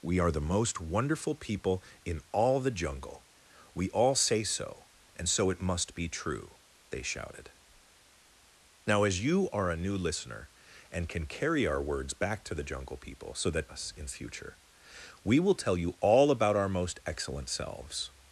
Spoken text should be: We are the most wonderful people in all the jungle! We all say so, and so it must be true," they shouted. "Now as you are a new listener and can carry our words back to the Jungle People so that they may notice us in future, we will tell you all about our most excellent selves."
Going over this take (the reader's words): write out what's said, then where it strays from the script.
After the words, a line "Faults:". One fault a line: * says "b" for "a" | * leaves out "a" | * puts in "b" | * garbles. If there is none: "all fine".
We are the most wonderful people in all the jungle! We all say so, and so it must be true," they shouted. "Now as you are a new listener and can carry our words back to the Jungle People so that us in future, we will tell you all about our most excellent selves."
Faults:
* leaves out "they may notice"